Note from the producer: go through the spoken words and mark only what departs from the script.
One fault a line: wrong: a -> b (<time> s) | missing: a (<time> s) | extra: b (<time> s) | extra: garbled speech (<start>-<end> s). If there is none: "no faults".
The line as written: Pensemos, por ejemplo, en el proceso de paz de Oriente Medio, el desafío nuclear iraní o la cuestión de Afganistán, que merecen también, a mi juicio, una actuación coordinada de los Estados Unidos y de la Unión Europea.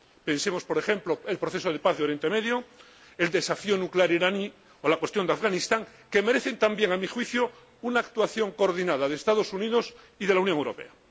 no faults